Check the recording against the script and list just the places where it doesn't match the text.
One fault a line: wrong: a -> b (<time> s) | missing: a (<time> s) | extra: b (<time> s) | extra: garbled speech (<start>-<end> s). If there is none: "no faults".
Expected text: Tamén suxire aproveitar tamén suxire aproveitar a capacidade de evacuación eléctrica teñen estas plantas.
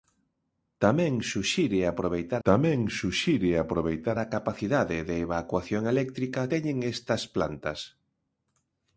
no faults